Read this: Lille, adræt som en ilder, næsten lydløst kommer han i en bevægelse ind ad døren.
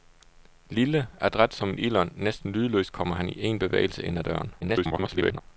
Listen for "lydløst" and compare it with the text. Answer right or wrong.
right